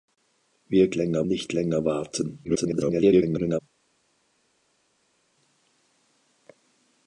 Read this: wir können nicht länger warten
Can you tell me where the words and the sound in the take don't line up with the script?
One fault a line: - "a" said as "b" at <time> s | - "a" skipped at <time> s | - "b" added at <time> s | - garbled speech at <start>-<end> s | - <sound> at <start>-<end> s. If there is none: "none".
- "können" said as "länger" at 0.9 s
- garbled speech at 2.4-3.6 s